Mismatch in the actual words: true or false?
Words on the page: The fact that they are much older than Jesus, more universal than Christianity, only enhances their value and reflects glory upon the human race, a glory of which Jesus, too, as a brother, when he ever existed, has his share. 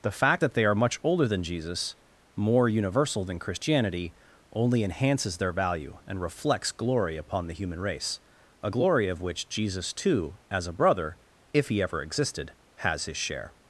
true